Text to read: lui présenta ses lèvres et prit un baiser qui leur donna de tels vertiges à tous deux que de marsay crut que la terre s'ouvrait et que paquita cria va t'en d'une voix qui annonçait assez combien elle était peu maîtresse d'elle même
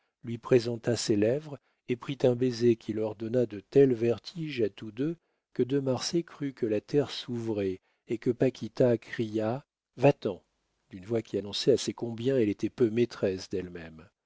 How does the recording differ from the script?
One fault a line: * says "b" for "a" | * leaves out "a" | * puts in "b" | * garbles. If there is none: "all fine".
all fine